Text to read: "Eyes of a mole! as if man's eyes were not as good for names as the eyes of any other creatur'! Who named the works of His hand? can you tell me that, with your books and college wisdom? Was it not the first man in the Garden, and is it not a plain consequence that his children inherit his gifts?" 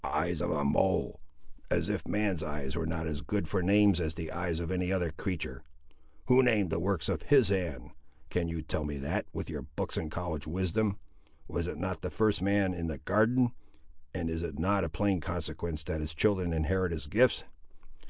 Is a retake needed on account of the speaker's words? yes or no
no